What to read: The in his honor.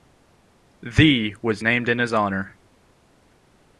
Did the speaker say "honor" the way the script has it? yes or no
yes